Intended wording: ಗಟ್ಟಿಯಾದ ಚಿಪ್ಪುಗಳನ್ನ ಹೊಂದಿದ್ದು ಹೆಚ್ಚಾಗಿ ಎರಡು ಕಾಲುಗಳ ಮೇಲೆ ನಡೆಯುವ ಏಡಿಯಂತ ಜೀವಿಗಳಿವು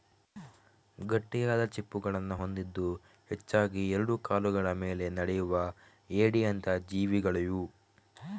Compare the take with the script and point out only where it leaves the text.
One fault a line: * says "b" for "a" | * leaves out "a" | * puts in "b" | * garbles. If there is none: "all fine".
all fine